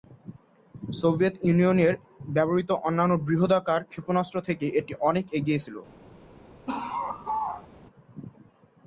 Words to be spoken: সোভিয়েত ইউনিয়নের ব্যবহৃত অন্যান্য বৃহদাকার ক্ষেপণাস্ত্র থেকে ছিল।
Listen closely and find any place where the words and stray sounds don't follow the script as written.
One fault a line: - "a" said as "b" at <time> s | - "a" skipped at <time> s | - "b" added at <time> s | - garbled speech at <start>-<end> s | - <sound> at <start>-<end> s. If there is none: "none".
- "এটি অনেক এগিয়ে" added at 4.8 s
- laugh at 6.7-7.7 s